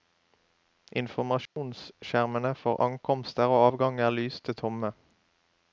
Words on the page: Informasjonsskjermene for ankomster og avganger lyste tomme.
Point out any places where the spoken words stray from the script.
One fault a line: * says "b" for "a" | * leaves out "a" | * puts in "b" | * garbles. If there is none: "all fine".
all fine